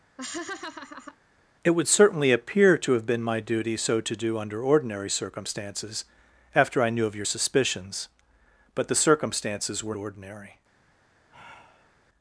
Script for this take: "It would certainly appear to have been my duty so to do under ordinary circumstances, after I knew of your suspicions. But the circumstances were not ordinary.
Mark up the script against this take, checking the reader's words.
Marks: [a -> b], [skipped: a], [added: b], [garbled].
"It would certainly appear to have been my duty so to do under ordinary circumstances, after I knew of your suspicions. But the circumstances were [skipped: not] ordinary.